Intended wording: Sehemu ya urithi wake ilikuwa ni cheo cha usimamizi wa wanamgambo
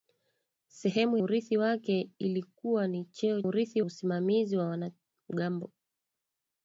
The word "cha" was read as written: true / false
false